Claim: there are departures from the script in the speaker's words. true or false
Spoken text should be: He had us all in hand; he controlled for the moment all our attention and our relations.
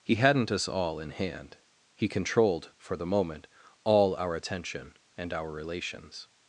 true